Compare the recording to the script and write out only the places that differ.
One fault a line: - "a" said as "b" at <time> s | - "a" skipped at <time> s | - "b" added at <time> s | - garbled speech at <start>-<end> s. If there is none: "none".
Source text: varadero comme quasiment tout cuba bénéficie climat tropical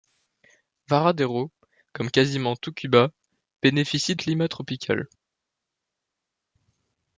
none